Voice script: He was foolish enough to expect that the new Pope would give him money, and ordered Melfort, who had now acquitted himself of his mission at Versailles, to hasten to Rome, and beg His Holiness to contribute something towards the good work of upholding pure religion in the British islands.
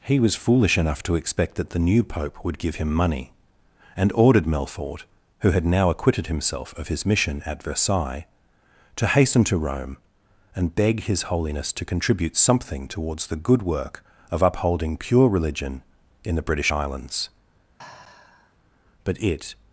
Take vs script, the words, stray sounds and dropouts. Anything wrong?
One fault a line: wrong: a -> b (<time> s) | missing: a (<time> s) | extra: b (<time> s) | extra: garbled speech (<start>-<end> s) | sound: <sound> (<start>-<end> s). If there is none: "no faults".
sound: sigh (17.8-18.5 s)
extra: But it (19.0 s)